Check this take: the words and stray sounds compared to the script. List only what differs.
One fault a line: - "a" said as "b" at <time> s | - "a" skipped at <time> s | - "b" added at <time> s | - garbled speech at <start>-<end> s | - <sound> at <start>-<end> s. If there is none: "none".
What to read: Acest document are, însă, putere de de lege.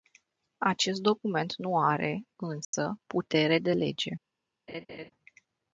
- "nu" added at 1.6 s
- dropout at 2.6-2.7 s
- "de" skipped at 3.7 s
- laugh at 4.7-5.1 s